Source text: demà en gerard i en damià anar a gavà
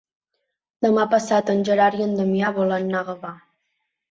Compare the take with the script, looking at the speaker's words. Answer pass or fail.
fail